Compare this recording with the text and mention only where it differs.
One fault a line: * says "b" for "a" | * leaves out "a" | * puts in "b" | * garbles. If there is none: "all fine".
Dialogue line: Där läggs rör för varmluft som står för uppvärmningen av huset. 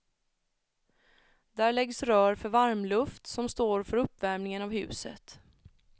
all fine